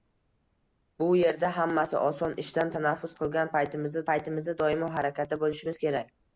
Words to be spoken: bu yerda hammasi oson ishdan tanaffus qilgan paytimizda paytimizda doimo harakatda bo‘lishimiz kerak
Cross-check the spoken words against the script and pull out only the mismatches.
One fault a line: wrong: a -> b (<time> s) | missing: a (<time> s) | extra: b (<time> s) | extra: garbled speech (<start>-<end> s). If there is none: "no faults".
no faults